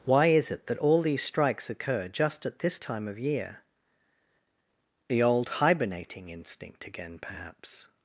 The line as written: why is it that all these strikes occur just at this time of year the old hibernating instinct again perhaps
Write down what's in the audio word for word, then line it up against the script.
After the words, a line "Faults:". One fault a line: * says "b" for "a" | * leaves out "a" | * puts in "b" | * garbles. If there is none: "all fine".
why is it that all these strikes occur just at this time of year the old hibernating instinct again perhaps
Faults:
all fine